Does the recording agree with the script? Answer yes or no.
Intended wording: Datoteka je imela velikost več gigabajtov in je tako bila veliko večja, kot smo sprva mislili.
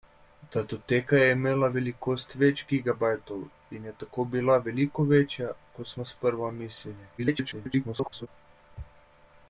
no